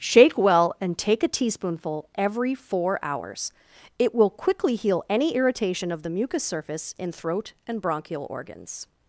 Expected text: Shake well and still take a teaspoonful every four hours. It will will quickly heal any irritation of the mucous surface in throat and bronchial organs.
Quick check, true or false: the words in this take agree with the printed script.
false